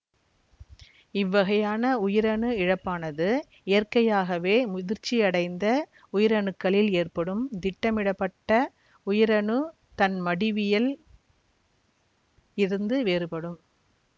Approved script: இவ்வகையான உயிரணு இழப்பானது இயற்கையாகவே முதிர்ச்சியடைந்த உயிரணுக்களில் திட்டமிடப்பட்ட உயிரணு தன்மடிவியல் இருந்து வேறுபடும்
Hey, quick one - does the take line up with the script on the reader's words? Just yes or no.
no